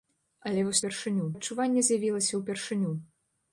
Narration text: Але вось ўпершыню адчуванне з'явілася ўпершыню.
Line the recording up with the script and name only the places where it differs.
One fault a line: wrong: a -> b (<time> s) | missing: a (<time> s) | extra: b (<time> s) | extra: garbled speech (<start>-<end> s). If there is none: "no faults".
no faults